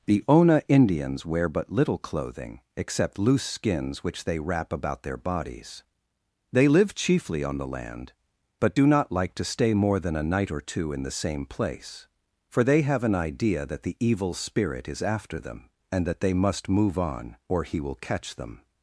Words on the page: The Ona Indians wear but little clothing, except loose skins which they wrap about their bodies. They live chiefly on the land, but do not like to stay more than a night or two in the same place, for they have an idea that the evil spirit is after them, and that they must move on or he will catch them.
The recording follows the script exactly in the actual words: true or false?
true